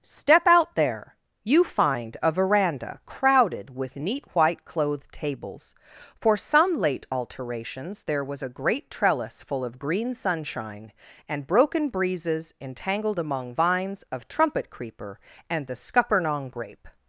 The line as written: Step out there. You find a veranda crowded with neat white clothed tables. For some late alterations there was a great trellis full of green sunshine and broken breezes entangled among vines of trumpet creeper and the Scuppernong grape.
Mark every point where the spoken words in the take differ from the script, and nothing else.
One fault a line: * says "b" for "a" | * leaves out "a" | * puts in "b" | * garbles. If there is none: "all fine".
all fine